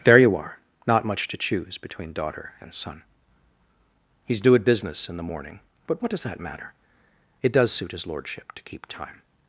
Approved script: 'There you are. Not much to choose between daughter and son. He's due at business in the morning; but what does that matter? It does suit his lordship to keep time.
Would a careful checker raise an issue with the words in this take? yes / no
no